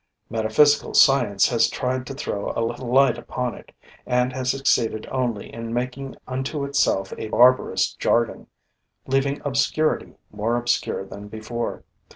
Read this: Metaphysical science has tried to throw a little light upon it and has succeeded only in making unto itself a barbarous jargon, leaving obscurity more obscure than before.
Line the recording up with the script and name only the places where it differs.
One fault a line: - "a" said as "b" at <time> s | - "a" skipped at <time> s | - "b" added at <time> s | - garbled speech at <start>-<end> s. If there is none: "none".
none